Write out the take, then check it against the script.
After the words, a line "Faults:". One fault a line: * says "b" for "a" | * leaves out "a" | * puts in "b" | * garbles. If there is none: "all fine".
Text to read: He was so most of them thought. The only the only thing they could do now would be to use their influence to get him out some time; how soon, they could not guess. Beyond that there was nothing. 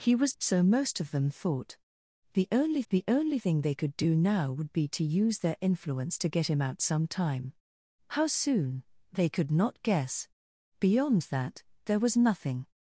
He was so most of them thought. The only the only thing they could do now would be to use their influence to get him out some time; how soon, they could not guess. Beyond that there was nothing.
Faults:
all fine